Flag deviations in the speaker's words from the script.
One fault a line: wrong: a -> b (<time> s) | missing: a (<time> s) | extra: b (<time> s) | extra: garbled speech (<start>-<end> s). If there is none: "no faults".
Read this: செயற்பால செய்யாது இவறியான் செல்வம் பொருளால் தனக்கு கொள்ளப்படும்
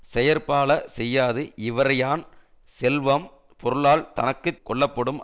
no faults